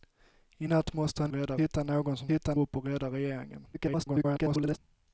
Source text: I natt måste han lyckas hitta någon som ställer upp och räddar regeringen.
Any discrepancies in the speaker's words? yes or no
yes